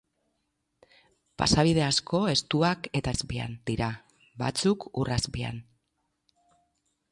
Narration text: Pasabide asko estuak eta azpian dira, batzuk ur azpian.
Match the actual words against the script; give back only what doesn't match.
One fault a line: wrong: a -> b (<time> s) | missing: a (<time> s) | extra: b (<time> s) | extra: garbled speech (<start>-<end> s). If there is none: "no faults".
no faults